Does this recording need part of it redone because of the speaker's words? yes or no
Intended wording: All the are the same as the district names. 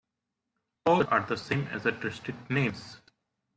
no